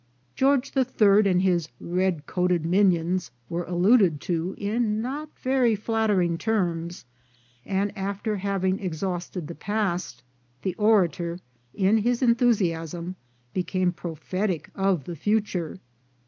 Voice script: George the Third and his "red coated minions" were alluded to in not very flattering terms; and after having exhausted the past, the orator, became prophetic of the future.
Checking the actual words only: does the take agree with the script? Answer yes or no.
no